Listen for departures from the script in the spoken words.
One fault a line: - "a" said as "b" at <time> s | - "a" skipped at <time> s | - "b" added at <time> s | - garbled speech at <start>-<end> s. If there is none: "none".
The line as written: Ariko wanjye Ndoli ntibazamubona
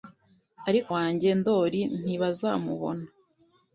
none